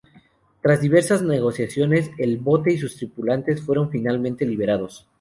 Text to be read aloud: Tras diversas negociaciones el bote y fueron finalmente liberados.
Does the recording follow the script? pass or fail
fail